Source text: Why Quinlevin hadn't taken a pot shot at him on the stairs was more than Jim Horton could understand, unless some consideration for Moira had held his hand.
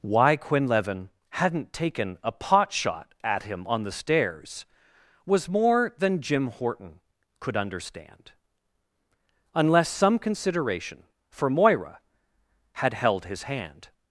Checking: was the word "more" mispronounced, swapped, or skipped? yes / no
no